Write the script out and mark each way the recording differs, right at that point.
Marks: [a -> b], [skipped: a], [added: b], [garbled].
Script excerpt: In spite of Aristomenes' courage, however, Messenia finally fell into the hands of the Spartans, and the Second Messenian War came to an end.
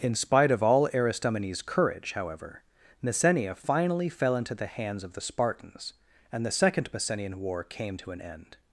In spite of [added: all] Aristomenes' courage, however, Messenia finally fell into the hands of the Spartans, and the Second Messenian War came to an end.